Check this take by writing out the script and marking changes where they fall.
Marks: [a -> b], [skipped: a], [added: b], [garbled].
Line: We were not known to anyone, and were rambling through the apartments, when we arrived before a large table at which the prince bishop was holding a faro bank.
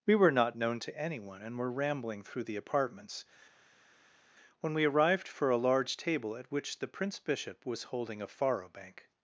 We were not known to anyone, and were rambling through the apartments, when we arrived [before -> for] a large table at which the prince bishop was holding a faro bank.